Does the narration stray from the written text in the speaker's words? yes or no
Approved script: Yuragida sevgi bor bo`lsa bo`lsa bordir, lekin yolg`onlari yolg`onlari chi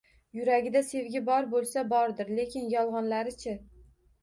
yes